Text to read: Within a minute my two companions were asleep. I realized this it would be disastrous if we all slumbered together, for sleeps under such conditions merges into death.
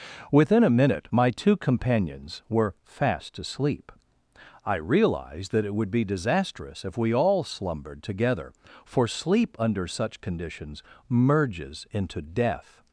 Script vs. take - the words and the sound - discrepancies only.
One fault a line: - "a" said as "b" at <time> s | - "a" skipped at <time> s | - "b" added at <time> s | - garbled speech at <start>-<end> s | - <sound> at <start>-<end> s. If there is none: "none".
- "fast" added at 2.8 s
- "this" said as "that" at 5.5 s
- "sleeps" said as "sleep" at 9.1 s